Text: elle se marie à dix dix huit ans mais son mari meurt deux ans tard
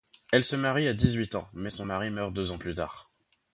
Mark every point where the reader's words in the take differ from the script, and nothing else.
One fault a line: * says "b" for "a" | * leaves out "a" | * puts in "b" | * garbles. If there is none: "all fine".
* leaves out "dix"
* puts in "plus"